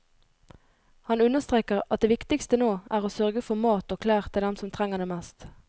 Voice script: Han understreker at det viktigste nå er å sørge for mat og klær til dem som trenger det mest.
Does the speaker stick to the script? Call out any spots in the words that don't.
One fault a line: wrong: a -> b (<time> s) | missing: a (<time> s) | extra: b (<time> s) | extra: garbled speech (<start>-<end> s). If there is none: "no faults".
no faults